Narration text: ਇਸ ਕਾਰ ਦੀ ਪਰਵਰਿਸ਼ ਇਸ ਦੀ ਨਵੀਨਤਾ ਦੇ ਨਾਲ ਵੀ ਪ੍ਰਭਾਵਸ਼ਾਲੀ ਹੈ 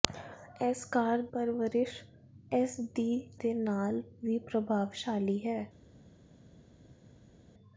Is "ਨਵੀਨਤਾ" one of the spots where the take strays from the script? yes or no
yes